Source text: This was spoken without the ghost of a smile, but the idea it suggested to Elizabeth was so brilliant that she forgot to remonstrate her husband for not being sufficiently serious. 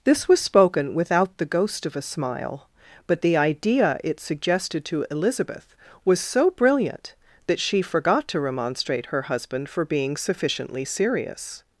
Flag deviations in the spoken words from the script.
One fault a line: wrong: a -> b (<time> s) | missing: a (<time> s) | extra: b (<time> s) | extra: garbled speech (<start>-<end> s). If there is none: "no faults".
missing: not (9.8 s)